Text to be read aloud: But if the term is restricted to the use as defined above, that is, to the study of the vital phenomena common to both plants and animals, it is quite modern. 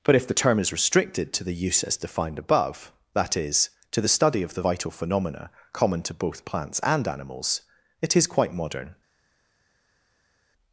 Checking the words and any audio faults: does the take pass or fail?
pass